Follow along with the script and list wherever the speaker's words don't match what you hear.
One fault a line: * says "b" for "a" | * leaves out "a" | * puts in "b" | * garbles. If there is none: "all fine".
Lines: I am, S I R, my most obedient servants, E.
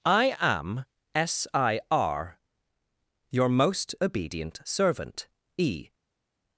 * says "your" for "my"
* says "servant" for "servants"